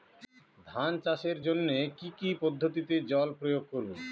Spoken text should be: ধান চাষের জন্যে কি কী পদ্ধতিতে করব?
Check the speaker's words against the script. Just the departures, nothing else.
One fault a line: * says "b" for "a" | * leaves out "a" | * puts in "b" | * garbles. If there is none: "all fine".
* puts in "জল প্রয়োগ"